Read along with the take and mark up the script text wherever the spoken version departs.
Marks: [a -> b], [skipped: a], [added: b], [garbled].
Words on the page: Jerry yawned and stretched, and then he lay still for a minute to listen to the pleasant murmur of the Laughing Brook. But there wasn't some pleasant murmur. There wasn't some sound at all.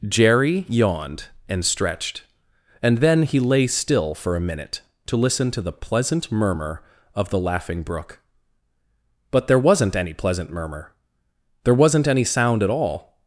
Jerry yawned and stretched, and then he lay still for a minute to listen to the pleasant murmur of the Laughing Brook. But there wasn't [some -> any] pleasant murmur. There wasn't [some -> any] sound at all.